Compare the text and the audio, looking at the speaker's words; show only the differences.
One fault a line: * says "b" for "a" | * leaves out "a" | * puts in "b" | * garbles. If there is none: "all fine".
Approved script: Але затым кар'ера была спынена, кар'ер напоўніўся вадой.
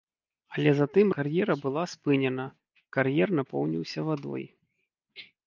all fine